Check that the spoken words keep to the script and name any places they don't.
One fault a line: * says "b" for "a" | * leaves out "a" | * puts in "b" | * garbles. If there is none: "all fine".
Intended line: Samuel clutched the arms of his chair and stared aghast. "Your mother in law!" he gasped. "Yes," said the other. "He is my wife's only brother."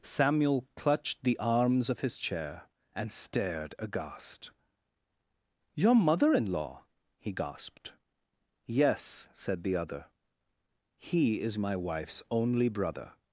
all fine